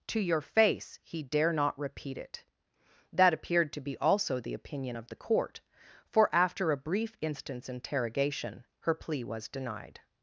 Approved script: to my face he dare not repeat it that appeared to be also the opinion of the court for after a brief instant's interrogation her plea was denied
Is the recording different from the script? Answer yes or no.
yes